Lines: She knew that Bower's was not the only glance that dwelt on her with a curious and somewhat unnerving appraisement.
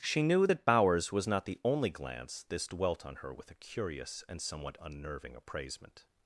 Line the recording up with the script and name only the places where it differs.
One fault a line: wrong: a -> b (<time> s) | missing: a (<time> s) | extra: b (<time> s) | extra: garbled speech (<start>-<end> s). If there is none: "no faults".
wrong: that -> this (2.5 s)